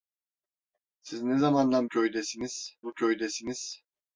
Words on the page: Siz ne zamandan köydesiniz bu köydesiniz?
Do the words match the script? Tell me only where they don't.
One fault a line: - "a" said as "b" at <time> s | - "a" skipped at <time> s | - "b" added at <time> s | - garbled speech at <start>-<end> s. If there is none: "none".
none